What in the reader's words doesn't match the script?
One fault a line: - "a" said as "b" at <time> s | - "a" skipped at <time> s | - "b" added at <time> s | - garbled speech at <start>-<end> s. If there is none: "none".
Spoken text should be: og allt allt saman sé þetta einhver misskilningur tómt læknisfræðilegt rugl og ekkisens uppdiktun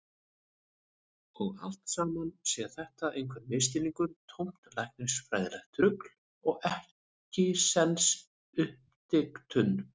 - "allt" skipped at 1.9 s